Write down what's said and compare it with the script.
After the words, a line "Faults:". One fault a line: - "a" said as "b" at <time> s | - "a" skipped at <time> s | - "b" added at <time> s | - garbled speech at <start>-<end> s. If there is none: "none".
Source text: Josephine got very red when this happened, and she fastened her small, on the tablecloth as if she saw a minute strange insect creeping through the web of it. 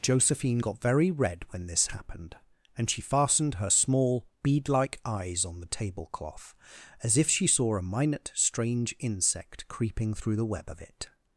Josephine got very red when this happened, and she fastened her small, bead like eyes on the tablecloth as if she saw a minute strange insect creeping through the web of it.
Faults:
- "bead like eyes" added at 4.4 s